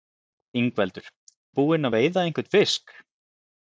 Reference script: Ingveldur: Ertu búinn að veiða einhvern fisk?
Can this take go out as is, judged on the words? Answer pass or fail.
fail